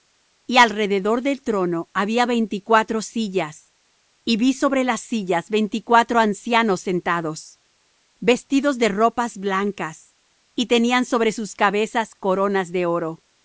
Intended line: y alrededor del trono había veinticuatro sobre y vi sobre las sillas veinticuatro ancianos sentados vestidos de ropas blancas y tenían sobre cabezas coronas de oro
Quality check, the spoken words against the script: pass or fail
fail